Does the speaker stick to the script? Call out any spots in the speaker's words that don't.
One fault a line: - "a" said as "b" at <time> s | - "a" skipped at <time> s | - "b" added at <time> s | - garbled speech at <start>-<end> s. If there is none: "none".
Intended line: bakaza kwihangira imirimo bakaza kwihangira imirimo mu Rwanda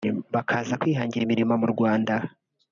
- "bakaza kwihangira imirimo" skipped at 1.5 s